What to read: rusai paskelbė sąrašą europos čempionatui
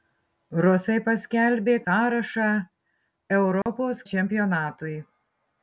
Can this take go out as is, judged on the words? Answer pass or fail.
pass